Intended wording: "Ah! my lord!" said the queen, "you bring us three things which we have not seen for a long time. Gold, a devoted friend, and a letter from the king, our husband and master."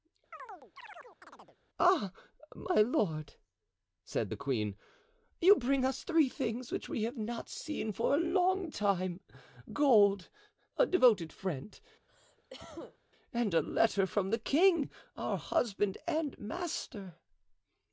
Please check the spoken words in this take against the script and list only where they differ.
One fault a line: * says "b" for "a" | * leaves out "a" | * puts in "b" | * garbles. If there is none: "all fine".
all fine